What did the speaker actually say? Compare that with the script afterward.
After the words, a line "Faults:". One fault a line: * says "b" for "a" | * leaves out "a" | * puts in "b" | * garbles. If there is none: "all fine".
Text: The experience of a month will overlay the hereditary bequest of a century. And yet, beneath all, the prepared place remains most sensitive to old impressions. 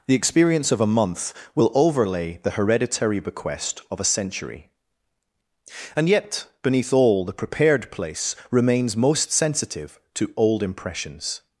The experience of a month will overlay the hereditary bequest of a century. And yet, beneath all, the prepared place remains most sensitive to old impressions.
Faults:
all fine